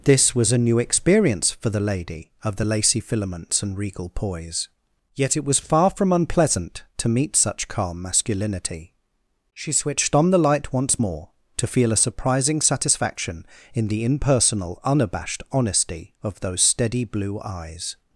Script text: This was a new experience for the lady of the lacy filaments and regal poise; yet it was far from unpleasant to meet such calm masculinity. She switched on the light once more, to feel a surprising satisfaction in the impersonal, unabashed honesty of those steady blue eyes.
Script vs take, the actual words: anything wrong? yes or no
no